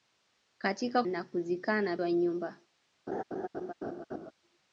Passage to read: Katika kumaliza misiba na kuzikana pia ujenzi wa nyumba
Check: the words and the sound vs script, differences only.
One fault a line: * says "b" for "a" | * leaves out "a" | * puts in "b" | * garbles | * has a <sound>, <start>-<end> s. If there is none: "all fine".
* leaves out "kumaliza misiba"
* leaves out "pia ujenzi"
* has a laugh, 3.1-4.3 s